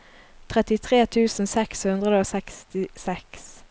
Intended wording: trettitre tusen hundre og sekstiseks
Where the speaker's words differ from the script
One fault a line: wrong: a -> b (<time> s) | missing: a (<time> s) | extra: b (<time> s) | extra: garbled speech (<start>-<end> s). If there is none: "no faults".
extra: seks (1.5 s)